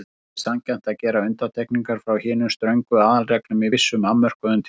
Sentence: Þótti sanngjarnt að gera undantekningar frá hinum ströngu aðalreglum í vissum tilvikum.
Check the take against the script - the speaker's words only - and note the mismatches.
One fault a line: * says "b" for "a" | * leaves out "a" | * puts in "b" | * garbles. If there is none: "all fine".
* puts in "afmörkuðum"